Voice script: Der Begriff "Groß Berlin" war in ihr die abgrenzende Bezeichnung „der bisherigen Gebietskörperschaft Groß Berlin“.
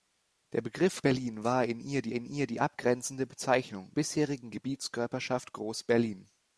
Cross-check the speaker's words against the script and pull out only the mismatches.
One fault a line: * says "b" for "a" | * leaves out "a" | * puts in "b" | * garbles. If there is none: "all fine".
* leaves out "Groß"
* puts in "in ihr die"
* leaves out "der"